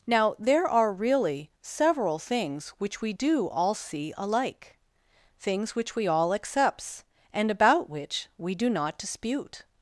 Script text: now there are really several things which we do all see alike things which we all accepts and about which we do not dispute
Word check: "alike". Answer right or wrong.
right